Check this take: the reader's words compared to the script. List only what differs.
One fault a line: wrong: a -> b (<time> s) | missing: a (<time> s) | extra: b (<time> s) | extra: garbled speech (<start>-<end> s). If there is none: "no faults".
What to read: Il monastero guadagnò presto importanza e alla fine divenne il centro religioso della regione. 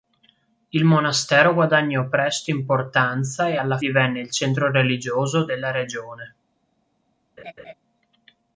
missing: fine (3.8 s)